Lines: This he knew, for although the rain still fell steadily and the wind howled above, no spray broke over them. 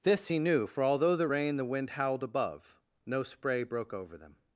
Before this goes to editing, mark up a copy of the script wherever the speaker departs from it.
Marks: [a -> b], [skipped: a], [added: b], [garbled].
This he knew, for although the rain [skipped: still fell steadily and] the wind howled above, no spray broke over them.